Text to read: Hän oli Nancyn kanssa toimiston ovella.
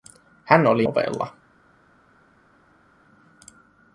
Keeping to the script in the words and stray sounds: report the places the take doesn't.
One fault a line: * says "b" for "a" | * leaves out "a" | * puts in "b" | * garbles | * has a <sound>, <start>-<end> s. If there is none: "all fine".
* leaves out "Nancyn kanssa toimiston"